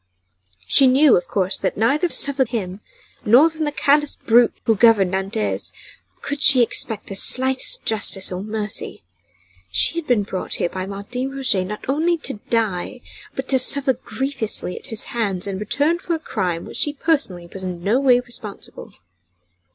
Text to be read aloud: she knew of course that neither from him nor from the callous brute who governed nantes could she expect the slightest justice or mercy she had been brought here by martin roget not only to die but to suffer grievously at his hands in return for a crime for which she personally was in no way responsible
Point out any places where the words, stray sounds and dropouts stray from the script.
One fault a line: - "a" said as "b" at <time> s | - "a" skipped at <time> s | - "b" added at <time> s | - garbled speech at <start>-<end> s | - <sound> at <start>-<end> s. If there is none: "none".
- "from" said as "suffer" at 2.1 s